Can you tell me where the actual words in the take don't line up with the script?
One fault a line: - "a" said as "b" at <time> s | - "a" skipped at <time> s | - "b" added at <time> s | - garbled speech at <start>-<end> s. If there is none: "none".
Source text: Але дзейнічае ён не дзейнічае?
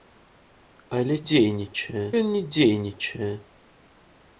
none